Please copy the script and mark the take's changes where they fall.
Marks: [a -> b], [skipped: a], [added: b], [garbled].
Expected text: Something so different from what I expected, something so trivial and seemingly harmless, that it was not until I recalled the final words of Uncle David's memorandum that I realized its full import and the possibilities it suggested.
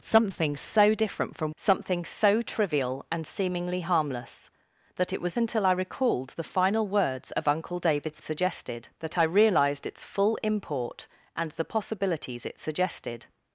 Something so different from [skipped: what I expected,] something so trivial and seemingly harmless, that it was [skipped: not] until I recalled the final words of Uncle David's [memorandum -> suggested] that I realized its full import and the possibilities it suggested.